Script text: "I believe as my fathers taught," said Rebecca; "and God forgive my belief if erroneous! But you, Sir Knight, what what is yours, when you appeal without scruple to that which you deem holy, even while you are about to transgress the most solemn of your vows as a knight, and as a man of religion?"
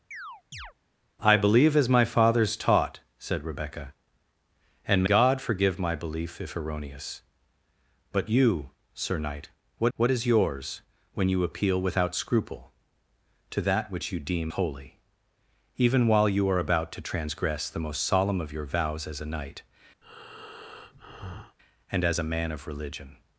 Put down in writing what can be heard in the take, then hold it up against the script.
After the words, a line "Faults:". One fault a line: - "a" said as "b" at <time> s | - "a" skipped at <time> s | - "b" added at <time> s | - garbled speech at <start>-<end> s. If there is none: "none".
"I believe as my fathers taught," said Rebecca; "and God forgive my belief if erroneous! But you, Sir Knight, what what is yours, when you appeal without scruple to that which you deem holy, even while you are about to transgress the most solemn of your vows as a knight, and as a man of religion?"
Faults:
none